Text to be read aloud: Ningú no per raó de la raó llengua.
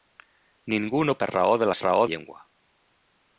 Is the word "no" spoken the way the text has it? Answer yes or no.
yes